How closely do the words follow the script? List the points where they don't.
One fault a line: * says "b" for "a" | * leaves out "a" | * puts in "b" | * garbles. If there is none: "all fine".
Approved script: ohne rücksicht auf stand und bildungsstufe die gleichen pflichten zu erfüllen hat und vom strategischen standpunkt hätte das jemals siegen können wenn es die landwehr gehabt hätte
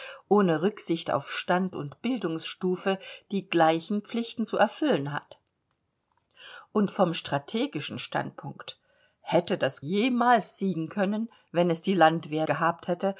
all fine